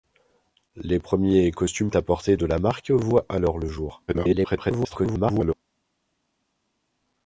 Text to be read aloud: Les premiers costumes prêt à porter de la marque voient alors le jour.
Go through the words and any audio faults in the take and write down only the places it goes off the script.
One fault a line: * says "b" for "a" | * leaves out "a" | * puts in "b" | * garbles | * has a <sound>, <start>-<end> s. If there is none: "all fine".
* leaves out "prêt"
* garbles